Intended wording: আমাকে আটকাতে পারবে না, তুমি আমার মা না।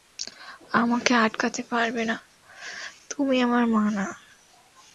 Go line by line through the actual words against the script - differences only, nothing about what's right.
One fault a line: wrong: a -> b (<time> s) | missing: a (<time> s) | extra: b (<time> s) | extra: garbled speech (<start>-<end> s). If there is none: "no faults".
no faults